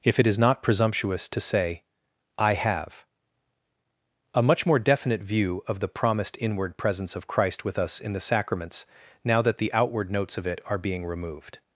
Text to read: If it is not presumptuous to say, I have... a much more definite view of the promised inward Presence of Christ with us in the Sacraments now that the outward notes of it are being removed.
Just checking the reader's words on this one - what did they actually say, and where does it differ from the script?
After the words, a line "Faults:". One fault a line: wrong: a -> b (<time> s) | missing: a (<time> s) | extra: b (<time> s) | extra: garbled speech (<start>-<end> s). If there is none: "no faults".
If it is not presumptuous to say, I have... a much more definite view of the promised inward Presence of Christ with us in the Sacraments now that the outward notes of it are being removed.
Faults:
no faults